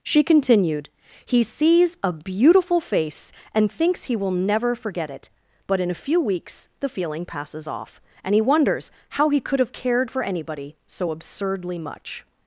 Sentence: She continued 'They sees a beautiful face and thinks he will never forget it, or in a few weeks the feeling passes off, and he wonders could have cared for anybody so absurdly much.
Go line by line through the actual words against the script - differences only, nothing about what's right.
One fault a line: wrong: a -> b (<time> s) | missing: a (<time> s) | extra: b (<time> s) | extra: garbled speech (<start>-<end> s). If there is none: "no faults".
wrong: They -> He (1.2 s)
wrong: or -> but (5.7 s)
extra: how he (9.1 s)